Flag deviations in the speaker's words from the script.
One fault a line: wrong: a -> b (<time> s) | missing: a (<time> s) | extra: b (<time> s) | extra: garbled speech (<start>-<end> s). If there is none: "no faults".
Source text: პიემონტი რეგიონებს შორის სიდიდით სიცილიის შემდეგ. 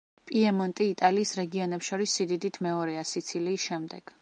extra: იტალიის (0.9 s)
extra: მეორეა (2.7 s)